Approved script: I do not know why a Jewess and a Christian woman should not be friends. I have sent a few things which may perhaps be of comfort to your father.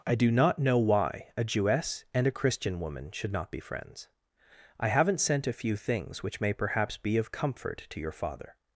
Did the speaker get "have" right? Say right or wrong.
wrong